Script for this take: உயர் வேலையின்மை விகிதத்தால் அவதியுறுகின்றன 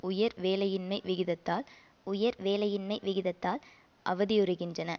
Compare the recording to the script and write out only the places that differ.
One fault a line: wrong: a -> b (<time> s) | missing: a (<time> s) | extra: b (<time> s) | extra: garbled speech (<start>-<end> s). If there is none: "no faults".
extra: உயர் வேலையின்மை விகிதத்தால் (2.1 s)